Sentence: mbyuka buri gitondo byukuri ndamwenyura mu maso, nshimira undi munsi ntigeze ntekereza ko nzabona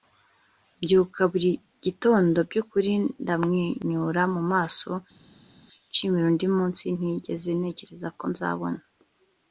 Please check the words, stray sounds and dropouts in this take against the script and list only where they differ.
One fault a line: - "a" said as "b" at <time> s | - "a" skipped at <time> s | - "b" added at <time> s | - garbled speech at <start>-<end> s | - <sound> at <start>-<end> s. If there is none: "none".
none